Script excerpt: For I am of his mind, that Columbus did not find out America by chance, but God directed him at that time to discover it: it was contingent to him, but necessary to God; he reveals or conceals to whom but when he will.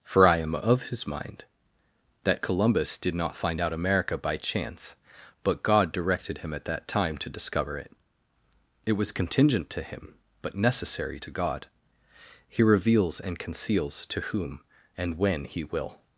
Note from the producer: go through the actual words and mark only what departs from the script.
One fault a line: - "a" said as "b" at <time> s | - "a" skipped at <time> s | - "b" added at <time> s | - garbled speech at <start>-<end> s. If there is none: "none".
- "or" said as "and" at 13.2 s
- "but" said as "and" at 15.0 s